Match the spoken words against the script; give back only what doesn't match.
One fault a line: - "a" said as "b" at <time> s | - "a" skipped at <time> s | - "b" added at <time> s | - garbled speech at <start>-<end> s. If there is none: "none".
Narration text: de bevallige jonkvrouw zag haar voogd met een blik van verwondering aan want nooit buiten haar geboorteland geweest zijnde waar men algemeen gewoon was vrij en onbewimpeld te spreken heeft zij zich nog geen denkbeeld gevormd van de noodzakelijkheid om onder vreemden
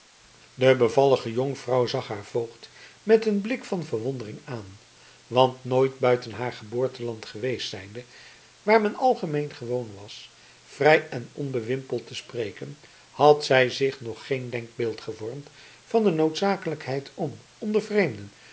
- "heeft" said as "had" at 13.1 s